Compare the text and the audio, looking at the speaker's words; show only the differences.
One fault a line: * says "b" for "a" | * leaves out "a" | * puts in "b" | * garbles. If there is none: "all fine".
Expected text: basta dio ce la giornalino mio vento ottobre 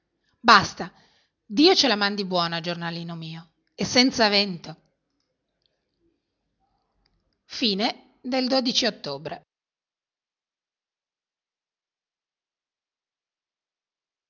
* puts in "mandi buona"
* puts in "e senza"